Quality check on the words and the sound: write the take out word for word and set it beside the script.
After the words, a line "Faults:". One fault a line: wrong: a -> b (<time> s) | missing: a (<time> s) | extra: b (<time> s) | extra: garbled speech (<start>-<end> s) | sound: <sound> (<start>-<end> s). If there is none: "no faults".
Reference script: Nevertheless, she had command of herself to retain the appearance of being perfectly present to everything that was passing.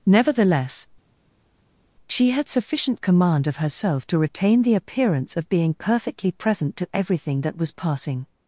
Nevertheless, she had sufficient command of herself to retain the appearance of being perfectly present to everything that was passing.
Faults:
extra: sufficient (2.5 s)